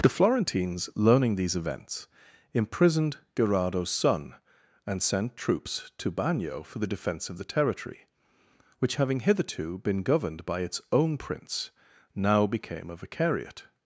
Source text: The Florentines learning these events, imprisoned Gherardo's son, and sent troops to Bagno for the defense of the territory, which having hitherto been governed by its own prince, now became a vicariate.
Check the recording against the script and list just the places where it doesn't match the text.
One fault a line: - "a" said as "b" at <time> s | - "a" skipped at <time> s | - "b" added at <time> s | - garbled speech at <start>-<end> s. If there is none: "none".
none